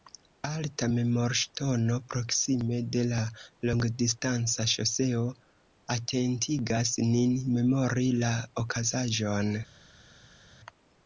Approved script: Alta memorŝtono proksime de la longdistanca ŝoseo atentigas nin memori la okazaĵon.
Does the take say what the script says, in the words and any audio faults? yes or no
yes